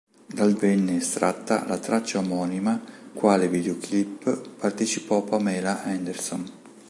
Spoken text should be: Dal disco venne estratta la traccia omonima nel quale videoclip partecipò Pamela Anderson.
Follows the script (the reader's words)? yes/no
no